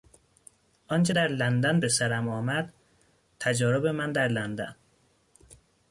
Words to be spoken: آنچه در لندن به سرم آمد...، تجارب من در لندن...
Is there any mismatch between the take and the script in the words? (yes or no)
no